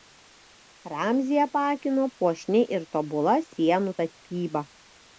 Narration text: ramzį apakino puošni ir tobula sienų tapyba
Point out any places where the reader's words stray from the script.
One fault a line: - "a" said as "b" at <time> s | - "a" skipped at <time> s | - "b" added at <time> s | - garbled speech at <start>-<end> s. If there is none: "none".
none